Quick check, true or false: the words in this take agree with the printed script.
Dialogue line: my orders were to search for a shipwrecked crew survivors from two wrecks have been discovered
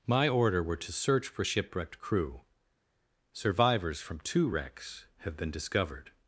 false